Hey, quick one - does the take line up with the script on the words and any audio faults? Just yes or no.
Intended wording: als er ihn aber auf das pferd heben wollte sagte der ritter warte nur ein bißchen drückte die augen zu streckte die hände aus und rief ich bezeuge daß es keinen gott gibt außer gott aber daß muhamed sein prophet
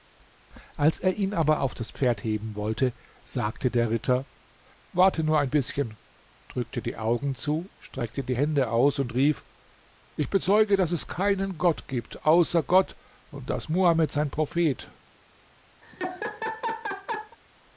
no